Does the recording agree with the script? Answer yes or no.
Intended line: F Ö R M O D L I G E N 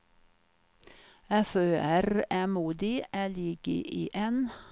yes